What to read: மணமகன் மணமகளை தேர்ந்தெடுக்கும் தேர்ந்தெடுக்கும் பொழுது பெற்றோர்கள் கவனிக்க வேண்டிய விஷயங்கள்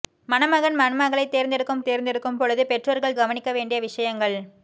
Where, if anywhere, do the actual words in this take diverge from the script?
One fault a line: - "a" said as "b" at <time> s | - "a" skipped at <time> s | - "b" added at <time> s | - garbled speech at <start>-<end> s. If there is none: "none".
none